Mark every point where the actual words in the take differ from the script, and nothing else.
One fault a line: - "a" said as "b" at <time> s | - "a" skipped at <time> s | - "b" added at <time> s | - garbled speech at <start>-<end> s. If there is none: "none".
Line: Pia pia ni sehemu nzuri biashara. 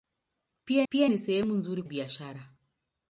none